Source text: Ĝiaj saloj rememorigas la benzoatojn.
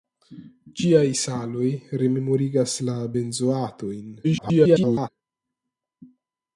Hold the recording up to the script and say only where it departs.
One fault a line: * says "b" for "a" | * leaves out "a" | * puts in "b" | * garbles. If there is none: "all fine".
* garbles